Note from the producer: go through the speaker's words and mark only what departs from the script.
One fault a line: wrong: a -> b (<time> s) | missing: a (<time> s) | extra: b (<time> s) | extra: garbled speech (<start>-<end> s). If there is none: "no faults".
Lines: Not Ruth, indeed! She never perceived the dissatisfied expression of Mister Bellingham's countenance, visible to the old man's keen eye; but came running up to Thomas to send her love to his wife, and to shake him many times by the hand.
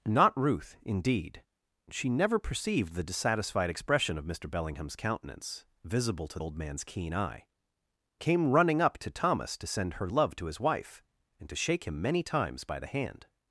missing: the (6.4 s)
missing: but (7.5 s)